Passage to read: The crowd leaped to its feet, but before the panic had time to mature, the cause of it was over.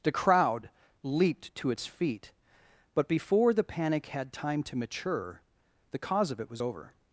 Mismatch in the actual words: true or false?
false